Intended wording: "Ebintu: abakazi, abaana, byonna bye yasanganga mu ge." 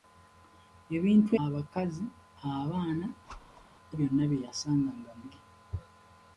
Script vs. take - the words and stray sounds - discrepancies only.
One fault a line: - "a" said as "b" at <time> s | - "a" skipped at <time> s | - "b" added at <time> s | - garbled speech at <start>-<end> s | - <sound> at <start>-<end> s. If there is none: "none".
- whoosh at 3.3-3.7 s